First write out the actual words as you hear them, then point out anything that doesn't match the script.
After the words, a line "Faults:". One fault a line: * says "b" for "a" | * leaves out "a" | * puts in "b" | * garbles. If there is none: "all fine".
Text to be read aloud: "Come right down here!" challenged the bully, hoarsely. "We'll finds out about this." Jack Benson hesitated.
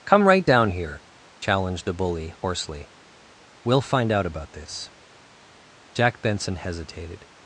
"Come right down here!" challenged the bully, hoarsely. "We'll find out about this." Jack Benson hesitated.
Faults:
* says "find" for "finds"